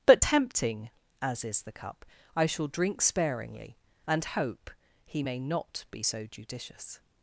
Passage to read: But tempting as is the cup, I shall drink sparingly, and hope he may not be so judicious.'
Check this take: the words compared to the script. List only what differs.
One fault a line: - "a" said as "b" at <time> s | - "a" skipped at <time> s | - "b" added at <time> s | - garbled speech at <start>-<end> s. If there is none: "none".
none